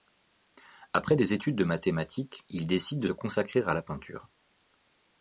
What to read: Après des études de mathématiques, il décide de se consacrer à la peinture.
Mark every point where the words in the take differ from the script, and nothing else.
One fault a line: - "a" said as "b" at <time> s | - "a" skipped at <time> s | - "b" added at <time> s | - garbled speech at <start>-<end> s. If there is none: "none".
- "se" skipped at 3.1 s